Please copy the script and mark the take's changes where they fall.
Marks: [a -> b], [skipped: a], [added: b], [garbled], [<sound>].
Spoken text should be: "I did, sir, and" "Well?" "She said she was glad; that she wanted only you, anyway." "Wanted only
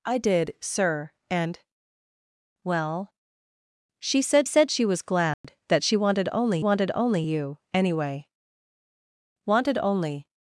"I did, sir, and" "Well?" "She said [added: said] she was glad; [dropout] that she wanted only [added: wanted only] you, anyway." "Wanted only